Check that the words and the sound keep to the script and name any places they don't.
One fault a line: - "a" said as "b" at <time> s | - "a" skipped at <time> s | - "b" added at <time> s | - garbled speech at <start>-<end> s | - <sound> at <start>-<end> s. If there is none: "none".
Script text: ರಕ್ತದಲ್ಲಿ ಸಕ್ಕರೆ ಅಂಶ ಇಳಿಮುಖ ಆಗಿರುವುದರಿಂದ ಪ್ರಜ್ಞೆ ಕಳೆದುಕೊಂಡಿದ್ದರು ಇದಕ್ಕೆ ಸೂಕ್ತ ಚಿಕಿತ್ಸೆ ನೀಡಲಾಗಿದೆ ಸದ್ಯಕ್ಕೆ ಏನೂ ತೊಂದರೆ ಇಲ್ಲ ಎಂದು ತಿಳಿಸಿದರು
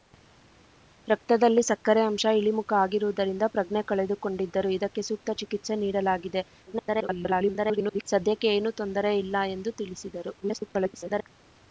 - garbled speech at 6.7-8.0 s
- garbled speech at 10.4-11.3 s